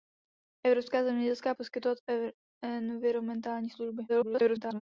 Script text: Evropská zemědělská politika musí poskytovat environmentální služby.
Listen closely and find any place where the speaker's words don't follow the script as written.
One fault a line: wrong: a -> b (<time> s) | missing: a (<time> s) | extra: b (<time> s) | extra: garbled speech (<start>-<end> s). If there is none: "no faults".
missing: politika musí (1.6 s)
extra: garbled speech (4.1-4.8 s)